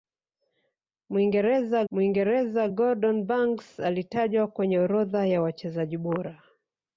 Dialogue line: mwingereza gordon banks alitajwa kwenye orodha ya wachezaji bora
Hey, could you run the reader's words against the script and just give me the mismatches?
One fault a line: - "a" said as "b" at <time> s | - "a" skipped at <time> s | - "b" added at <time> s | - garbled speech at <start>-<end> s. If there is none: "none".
- "mwingereza" added at 1.9 s